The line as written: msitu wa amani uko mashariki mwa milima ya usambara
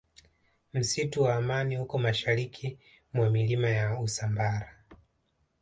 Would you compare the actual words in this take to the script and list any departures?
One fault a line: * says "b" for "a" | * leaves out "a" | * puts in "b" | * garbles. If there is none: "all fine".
all fine